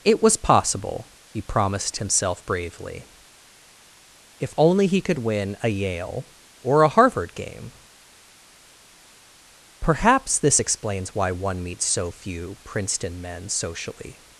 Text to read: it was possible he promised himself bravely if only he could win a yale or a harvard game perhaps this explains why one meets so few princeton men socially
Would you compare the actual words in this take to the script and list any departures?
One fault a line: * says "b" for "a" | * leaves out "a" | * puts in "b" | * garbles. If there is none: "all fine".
all fine